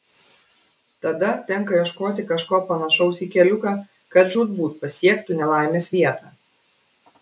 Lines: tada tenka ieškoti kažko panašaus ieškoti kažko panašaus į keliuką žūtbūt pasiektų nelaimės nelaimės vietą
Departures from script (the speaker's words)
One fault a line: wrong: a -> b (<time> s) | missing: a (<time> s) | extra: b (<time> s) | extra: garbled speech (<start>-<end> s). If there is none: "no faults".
missing: ieškoti kažko panašaus (3.2 s)
extra: kad (4.2 s)
missing: nelaimės (5.9 s)